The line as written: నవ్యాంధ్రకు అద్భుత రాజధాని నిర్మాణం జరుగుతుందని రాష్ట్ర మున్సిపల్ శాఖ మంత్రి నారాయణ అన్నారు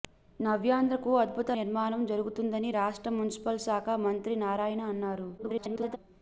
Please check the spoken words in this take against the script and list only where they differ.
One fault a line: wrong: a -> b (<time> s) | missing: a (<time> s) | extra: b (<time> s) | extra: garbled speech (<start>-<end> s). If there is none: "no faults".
missing: రాజధాని (1.5 s)
extra: garbled speech (5.4-6.0 s)